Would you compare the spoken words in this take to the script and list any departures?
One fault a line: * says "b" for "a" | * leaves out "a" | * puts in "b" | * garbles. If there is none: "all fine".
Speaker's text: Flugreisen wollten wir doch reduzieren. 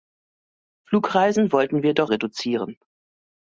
all fine